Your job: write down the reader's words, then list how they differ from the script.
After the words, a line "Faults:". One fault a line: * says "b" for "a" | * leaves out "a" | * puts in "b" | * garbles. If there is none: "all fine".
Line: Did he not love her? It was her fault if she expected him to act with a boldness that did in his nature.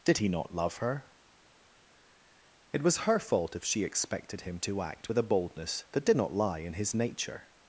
Did he not love her? It was her fault if she expected him to act with a boldness that did not lie in his nature.
Faults:
* puts in "not lie"